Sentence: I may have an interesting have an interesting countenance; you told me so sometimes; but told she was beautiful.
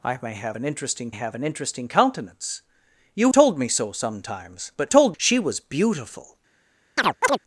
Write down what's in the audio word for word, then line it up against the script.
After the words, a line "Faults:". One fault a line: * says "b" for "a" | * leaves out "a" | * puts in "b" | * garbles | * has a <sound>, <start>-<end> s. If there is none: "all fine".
I may have an interesting have an interesting countenance; you told me so sometimes; but told she was beautiful.
Faults:
* has a chirp, 7.0-7.4 s